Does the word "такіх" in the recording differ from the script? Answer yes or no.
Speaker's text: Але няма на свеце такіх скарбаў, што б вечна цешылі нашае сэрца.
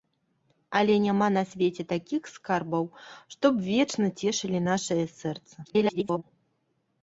no